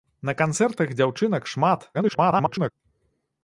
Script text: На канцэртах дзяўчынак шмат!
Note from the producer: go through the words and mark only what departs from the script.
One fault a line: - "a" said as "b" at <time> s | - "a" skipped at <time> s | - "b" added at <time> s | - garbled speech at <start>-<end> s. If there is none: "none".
- garbled speech at 1.9-2.7 s